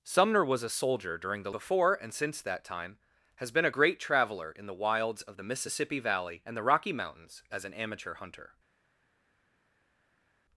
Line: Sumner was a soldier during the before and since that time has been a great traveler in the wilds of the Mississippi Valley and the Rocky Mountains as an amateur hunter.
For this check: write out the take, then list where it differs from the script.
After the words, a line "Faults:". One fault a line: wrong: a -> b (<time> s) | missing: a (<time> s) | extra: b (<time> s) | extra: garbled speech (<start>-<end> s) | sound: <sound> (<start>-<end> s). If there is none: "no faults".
Sumner was a soldier during the before and since that time has been a great traveler in the wilds of the Mississippi Valley and the Rocky Mountains as an amateur hunter.
Faults:
no faults